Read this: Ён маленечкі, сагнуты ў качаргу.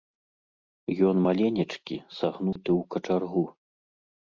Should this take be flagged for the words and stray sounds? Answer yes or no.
yes